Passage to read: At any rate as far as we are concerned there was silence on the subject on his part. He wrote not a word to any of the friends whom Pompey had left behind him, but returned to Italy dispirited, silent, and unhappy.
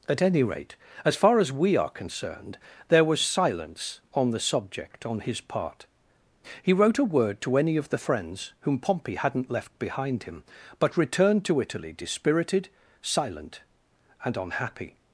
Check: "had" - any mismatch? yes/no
yes